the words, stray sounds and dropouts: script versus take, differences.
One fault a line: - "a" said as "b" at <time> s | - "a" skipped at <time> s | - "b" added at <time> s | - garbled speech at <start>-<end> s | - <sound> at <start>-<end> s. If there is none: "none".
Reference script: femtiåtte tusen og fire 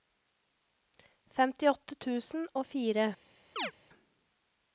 - chirp at 3.6-3.7 s